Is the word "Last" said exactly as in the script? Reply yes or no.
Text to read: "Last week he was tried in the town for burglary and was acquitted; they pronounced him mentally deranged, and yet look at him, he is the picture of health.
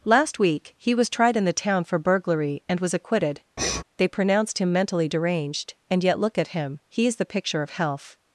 yes